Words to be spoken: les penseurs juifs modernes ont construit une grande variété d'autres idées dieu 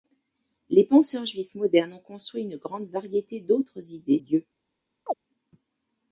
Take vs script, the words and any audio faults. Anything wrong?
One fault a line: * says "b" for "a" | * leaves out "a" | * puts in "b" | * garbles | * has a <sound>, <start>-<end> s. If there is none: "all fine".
* has a chirp, 5.1-5.1 s